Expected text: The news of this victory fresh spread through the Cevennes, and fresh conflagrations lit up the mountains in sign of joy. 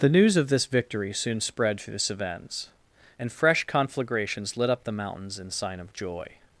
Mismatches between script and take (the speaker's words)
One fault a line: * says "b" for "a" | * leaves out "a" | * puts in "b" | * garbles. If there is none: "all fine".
* says "soon" for "fresh"